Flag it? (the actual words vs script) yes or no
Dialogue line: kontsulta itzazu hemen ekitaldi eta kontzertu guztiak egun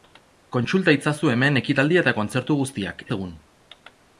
no